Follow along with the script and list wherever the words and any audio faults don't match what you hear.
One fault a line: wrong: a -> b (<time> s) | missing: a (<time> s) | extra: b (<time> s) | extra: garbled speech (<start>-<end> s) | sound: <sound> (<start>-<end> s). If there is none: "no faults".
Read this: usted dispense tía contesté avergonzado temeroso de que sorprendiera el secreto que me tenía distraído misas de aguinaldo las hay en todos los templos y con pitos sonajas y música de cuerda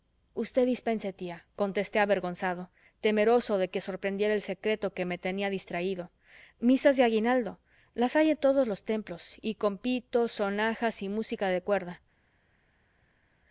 no faults